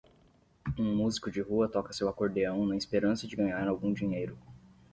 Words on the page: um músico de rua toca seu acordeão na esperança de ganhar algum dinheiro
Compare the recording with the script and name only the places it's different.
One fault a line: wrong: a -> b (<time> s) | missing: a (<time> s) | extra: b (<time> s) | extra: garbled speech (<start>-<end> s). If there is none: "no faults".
no faults